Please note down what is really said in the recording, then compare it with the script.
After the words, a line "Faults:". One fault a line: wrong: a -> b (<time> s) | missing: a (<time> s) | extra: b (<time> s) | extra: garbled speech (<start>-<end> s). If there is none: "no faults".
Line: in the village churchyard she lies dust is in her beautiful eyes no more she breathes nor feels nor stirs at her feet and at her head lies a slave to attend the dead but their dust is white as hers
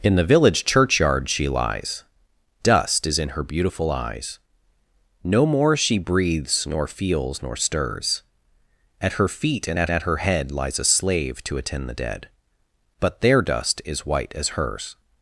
in the village churchyard she lies dust is in her beautiful eyes no more she breathes nor feels nor stirs at her feet and at at her head lies a slave to attend the dead but their dust is white as hers
Faults:
extra: at (9.9 s)